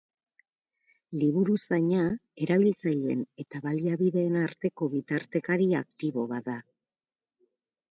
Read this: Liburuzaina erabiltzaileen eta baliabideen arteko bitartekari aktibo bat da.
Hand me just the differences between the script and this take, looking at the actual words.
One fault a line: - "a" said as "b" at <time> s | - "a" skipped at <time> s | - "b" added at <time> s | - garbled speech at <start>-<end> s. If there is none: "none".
none